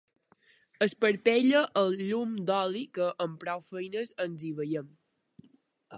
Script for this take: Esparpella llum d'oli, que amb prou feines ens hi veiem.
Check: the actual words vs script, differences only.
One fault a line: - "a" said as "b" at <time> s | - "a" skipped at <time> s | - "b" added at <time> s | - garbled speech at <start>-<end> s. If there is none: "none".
- "el" added at 1.8 s